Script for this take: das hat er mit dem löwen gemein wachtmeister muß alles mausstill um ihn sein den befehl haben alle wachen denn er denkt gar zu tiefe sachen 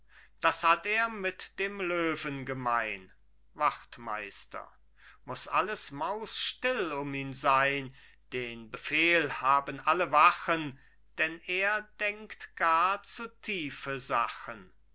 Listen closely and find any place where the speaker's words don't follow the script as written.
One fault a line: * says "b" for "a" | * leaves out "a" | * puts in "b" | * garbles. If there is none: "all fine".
all fine